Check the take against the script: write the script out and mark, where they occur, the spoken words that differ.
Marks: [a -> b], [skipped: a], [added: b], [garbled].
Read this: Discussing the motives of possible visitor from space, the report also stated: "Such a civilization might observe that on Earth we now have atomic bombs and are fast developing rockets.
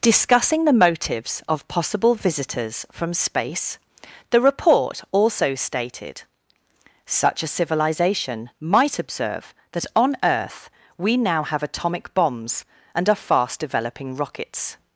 Discussing the motives of possible [visitor -> visitors] from space, the report also stated: "Such a civilization might observe that on Earth we now have atomic bombs and are fast developing rockets.